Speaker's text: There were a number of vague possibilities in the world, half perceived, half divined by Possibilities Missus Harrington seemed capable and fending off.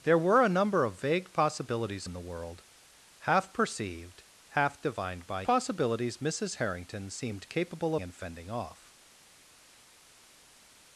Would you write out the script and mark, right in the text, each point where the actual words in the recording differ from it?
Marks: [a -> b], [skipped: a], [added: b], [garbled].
There were a number of vague possibilities in the world, half perceived, half divined by Possibilities Missus Harrington seemed capable and fending off.